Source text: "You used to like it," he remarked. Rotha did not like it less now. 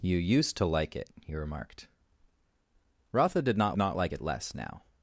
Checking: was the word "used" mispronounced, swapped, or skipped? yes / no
no